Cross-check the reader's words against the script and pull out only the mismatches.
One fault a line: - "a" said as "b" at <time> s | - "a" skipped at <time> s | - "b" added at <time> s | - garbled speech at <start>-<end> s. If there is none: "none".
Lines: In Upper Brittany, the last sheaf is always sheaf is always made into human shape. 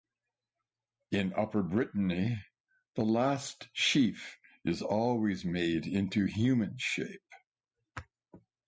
- "sheaf is always" skipped at 5.5 s